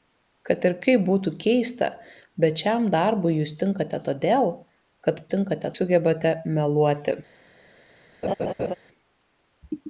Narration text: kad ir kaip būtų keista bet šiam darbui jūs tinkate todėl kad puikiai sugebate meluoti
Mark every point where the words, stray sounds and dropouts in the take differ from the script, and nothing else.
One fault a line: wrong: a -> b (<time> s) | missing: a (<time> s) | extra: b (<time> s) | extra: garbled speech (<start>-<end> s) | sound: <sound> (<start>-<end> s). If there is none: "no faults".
wrong: puikiai -> tinkate (5.3 s)
sound: laugh (8.2-8.7 s)